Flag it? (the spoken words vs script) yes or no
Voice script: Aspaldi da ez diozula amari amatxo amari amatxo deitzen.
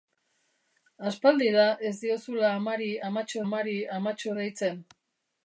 no